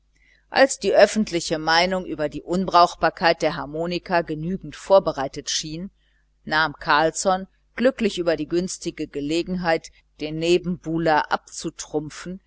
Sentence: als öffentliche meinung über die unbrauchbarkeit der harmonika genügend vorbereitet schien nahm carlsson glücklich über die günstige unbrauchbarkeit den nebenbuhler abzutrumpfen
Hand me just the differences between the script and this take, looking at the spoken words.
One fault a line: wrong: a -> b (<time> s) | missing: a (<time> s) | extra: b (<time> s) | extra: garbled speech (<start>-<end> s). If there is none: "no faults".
extra: die (0.8 s)
wrong: unbrauchbarkeit -> gelegenheit (9.1 s)